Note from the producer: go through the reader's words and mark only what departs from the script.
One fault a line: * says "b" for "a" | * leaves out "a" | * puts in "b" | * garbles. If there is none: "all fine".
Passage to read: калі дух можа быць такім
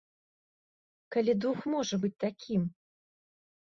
all fine